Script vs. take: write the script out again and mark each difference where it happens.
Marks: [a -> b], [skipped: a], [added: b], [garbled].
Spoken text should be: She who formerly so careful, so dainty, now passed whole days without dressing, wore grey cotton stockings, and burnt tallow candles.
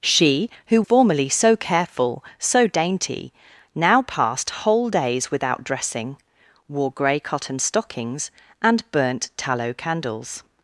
She who formerly so careful, so dainty, now passed whole days without dressing, wore grey cotton stockings, and burnt tallow candles.